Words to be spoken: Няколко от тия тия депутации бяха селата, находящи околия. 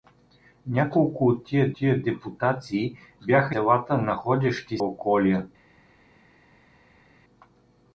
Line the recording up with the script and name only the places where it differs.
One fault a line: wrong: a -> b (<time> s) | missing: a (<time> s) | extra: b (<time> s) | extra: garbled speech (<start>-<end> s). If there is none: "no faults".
no faults